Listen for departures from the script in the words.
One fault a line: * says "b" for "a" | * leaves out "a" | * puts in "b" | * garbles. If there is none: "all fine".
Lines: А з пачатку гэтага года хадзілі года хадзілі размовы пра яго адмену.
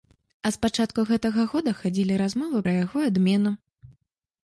* leaves out "года хадзілі"